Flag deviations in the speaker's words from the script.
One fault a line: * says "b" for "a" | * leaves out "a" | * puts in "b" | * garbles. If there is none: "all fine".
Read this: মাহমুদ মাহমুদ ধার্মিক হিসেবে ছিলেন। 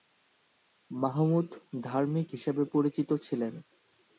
* leaves out "মাহমুদ"
* puts in "পরিচিত"